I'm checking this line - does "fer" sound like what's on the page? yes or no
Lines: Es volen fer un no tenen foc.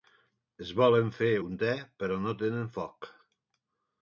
yes